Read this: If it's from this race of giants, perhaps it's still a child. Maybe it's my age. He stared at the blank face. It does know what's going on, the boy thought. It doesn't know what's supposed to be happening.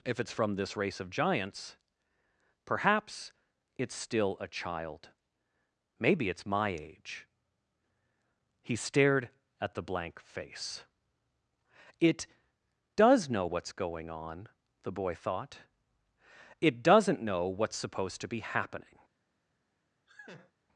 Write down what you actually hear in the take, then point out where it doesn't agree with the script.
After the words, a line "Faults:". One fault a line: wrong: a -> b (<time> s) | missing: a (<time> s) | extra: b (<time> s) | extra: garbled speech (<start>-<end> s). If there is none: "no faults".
If it's from this race of giants, perhaps it's still a child. Maybe it's my age. He stared at the blank face. It does know what's going on, the boy thought. It doesn't know what's supposed to be happening.
Faults:
no faults